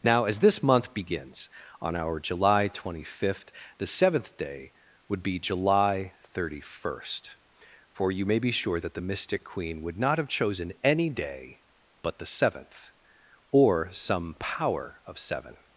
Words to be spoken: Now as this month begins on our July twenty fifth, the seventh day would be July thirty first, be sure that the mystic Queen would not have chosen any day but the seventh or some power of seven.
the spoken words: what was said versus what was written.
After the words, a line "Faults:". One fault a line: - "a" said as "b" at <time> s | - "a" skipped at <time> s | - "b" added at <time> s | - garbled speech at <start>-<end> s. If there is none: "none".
Now as this month begins on our July twenty fifth, the seventh day would be July thirty first, for you may be sure that the mystic Queen would not have chosen any day but the seventh or some power of seven.
Faults:
- "for you may" added at 7.9 s